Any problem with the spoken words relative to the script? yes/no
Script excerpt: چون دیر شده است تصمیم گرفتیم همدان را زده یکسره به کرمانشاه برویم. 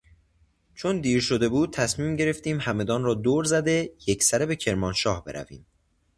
yes